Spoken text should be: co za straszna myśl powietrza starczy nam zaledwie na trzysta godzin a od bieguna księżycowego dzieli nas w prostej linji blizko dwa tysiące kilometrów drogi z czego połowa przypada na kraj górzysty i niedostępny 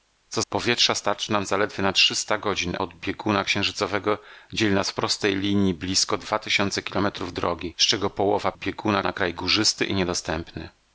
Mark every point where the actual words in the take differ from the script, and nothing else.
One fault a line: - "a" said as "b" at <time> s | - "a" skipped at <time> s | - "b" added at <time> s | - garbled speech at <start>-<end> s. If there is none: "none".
- "za straszna myśl" skipped at 0.4 s
- "a" skipped at 2.8 s
- "przypada" said as "bieguna" at 8.5 s